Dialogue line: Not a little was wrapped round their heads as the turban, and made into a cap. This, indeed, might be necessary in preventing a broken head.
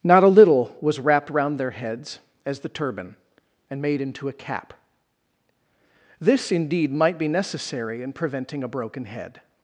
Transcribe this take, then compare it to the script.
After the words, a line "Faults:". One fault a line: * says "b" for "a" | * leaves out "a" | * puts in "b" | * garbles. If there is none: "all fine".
Not a little was wrapped round their heads as the turban, and made into a cap. This, indeed, might be necessary in preventing a broken head.
Faults:
all fine